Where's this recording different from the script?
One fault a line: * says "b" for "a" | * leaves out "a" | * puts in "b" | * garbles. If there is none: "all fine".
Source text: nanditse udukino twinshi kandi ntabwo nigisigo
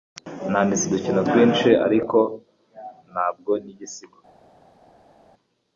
* says "ariko" for "kandi"